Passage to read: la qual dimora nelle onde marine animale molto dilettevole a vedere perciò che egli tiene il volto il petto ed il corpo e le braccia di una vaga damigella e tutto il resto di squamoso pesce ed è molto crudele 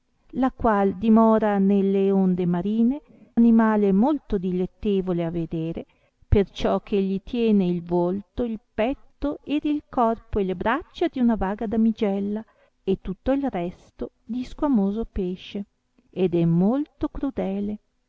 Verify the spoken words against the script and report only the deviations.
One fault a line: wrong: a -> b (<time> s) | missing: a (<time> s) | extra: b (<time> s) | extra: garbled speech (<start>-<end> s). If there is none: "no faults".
no faults